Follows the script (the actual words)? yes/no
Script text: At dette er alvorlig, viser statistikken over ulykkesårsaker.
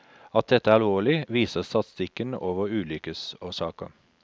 yes